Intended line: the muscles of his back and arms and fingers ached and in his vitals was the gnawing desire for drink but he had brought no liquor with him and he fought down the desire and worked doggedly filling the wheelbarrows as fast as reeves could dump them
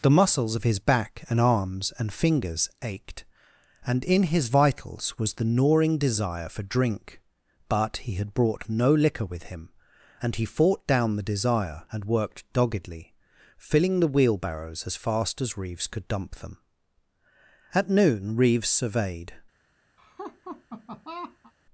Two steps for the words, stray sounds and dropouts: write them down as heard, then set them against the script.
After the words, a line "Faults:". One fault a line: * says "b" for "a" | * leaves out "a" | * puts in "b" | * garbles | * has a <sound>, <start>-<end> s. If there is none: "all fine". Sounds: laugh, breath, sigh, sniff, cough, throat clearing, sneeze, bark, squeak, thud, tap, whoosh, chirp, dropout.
the muscles of his back and arms and fingers ached and in his vitals was the gnawing desire for drink but he had brought no liquor with him and he fought down the desire and worked doggedly filling the wheelbarrows as fast as reeves could dump them at noon reeves surveyed
Faults:
* puts in "at noon reeves surveyed"
* has a laugh, 20.0-21.5 s